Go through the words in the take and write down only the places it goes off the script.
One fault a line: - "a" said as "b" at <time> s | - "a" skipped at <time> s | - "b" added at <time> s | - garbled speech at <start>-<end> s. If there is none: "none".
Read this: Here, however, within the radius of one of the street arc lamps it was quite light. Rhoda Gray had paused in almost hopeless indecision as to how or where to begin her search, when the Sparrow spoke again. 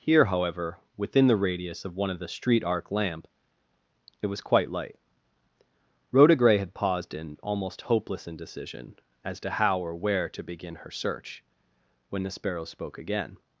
- "lamps" said as "lamp" at 2.9 s